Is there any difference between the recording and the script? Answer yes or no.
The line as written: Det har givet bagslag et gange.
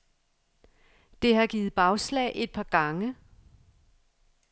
yes